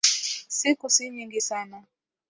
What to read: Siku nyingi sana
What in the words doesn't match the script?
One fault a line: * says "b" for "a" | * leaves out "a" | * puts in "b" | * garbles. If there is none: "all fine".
* puts in "si"